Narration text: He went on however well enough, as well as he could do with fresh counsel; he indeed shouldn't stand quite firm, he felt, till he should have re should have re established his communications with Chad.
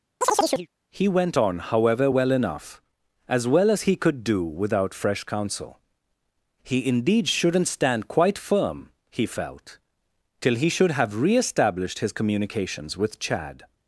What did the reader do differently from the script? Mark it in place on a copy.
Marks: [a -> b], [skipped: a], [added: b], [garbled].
He went on however well enough, as well as he could do [with -> without] fresh counsel; he indeed shouldn't stand quite firm, he felt, till he should have re [skipped: should have re] established his communications with Chad.